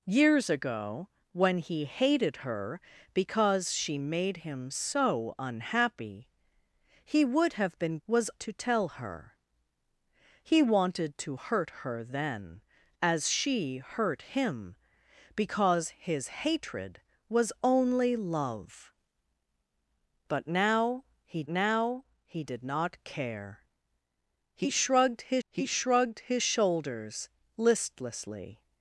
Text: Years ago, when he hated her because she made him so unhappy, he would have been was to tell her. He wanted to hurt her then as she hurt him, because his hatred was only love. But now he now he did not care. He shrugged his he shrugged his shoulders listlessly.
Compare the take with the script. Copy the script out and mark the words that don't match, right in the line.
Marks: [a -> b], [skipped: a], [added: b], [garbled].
Years ago, when he hated her because she made him so unhappy, he would have been was to tell her. He wanted to hurt her then as she hurt him, because his hatred was only love. But now he now he did not care. He shrugged his he shrugged his shoulders listlessly.